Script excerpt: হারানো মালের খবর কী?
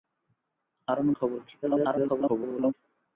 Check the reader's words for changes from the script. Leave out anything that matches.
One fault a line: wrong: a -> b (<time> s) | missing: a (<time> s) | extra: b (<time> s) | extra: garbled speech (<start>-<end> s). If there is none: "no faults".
missing: মালের (1.1 s)
extra: garbled speech (1.6-2.7 s)